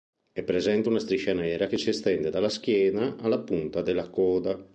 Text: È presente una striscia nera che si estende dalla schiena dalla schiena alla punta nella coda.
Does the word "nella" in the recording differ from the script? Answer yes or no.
yes